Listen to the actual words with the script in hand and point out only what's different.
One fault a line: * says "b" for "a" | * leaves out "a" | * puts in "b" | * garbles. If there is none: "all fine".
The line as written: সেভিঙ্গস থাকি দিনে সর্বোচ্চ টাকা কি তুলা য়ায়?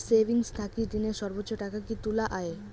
all fine